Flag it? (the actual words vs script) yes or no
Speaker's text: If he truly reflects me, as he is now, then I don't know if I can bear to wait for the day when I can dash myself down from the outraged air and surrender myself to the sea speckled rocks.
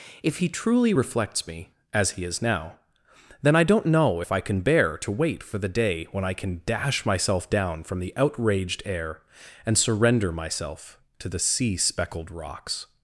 no